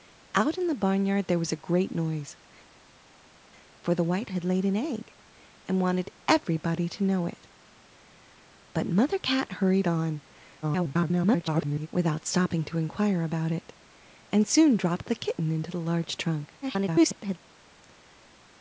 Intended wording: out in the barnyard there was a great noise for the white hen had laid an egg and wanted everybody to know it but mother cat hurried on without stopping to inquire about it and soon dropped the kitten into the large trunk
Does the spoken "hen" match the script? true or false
false